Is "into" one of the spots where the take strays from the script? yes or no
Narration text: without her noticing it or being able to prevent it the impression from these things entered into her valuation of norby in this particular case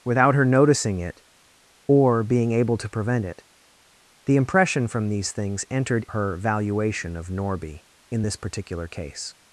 yes